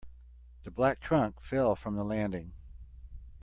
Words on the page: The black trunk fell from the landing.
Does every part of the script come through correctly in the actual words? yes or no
yes